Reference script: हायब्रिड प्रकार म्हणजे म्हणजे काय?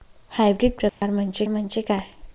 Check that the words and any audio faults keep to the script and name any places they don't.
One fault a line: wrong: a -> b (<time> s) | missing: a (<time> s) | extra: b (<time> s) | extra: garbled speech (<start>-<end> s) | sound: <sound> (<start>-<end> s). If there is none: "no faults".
sound: dropout (0.9-1.0 s)